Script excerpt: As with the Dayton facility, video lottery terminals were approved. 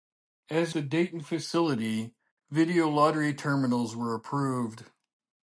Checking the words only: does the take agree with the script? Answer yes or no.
no